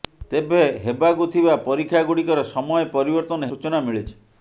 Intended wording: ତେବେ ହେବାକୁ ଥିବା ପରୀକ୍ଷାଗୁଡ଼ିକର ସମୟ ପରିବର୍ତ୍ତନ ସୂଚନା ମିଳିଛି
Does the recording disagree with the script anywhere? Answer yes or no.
no